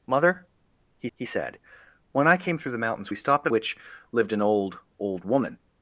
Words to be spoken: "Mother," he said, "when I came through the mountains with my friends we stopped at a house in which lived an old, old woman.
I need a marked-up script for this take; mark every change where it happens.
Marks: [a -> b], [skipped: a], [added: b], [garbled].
"Mother," he [added: he] said, "when I came through the mountains [skipped: with my friends] we stopped at [skipped: a house in] which lived an old, old woman.